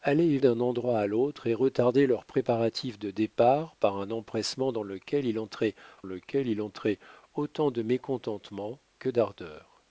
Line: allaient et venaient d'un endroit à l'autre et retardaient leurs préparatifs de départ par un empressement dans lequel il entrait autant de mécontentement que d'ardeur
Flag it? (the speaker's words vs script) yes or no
yes